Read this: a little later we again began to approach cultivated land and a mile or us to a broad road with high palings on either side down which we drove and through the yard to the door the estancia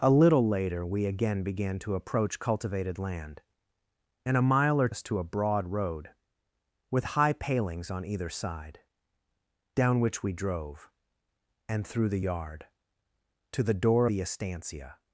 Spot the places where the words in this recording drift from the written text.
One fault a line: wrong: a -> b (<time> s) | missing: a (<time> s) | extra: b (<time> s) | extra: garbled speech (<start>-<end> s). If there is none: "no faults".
no faults